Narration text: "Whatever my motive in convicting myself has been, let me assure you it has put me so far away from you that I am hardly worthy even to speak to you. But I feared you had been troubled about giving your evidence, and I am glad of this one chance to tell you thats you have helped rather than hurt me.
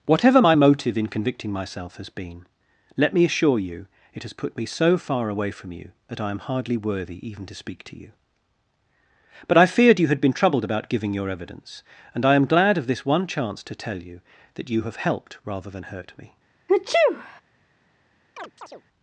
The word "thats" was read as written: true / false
false